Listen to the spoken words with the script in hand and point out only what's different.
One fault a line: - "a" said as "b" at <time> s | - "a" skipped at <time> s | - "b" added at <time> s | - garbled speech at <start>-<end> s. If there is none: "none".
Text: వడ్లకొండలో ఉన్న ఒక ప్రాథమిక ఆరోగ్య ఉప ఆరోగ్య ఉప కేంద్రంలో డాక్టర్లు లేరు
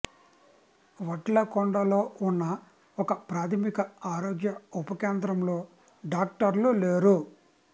- "ఆరోగ్య ఉప" skipped at 5.0 s